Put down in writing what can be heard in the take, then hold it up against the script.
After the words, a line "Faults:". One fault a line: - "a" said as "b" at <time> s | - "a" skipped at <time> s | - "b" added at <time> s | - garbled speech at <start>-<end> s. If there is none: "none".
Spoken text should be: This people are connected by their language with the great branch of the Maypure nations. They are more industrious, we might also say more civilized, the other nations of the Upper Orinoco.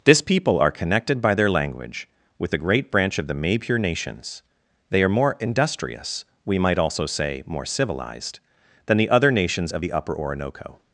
This people are connected by their language with the great branch of the Maypure nations. They are more industrious, we might also say more civilized, than the other nations of the Upper Orinoco.
Faults:
- "than" added at 8.8 s